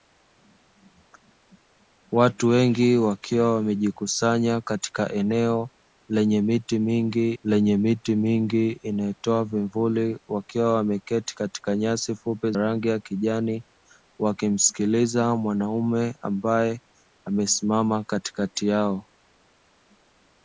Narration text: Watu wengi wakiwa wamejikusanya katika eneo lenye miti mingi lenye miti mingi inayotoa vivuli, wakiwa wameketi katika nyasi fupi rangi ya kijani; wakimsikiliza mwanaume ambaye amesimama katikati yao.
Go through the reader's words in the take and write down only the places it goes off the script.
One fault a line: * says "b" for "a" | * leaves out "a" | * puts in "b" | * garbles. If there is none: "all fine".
all fine